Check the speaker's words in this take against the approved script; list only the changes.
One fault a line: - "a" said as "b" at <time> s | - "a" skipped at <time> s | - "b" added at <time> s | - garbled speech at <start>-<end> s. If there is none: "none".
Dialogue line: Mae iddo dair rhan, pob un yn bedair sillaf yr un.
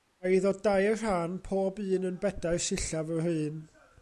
none